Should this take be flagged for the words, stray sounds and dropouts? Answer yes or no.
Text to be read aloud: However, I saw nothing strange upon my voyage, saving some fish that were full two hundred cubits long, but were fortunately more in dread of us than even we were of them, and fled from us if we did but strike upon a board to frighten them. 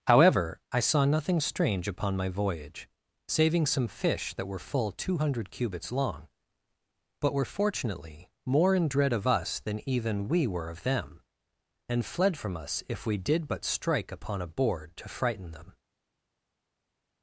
no